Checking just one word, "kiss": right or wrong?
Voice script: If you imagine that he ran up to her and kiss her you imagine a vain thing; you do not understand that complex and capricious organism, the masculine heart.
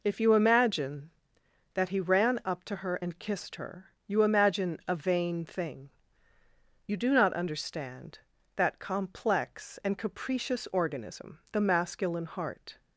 wrong